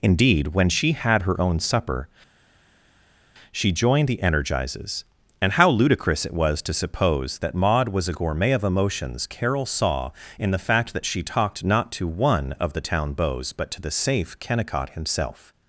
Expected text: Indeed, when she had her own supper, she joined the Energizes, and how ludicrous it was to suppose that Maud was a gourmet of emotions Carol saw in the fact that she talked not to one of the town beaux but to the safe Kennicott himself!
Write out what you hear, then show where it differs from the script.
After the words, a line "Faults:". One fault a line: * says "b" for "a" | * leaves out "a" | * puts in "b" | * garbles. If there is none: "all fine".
Indeed, when she had her own supper, she joined the Energizes, and how ludicrous it was to suppose that Maud was a gourmet of emotions Carol saw in the fact that she talked not to one of the town beaux but to the safe Kennicott himself!
Faults:
all fine